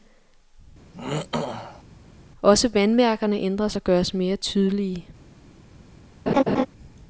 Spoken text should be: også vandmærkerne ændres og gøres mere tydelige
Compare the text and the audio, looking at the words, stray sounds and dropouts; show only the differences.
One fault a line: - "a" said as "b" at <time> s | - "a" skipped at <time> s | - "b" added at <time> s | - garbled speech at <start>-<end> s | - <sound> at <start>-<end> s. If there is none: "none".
- throat clearing at 0.9-1.8 s
- laugh at 6.3-6.7 s